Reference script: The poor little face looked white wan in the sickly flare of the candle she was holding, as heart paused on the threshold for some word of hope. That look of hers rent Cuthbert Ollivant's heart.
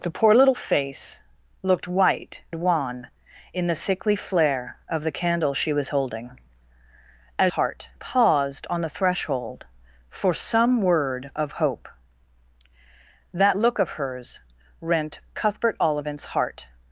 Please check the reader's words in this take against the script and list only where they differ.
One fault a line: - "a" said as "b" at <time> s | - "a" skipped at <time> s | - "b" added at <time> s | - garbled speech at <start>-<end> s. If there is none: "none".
none